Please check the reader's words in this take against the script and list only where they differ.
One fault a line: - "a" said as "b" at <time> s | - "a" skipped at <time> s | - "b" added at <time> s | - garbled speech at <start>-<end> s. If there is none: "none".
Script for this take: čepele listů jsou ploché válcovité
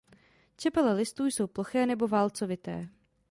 - "nebo" added at 1.9 s